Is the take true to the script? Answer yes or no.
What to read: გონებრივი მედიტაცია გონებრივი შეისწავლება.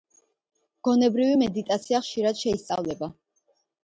no